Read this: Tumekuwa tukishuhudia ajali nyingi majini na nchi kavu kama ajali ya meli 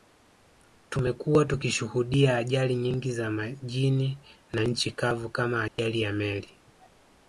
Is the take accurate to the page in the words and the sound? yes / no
no